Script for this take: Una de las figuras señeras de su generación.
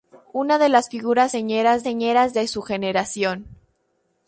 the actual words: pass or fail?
fail